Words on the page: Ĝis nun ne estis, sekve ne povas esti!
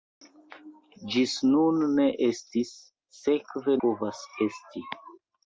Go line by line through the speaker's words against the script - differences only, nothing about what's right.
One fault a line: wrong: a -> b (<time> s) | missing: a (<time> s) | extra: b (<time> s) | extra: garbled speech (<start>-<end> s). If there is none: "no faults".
missing: ne (3.8 s)